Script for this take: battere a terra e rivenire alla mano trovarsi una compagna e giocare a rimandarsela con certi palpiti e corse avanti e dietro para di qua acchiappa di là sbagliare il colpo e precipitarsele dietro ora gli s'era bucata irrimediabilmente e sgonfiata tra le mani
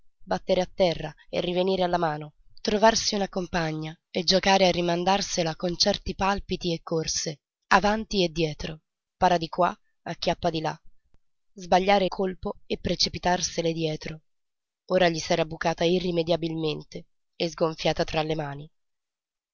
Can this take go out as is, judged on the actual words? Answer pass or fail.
fail